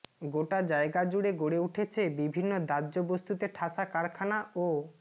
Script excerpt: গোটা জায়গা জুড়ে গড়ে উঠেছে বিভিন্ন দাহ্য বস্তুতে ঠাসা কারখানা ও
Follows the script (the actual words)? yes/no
yes